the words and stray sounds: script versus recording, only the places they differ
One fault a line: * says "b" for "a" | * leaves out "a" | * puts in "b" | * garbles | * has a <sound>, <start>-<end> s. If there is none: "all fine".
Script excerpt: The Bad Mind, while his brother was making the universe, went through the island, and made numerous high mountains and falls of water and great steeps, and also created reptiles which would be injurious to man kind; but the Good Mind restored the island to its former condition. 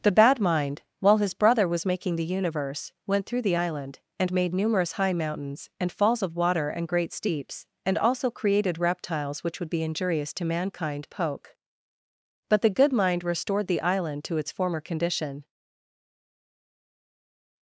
* says "mankind poke" for "man kind"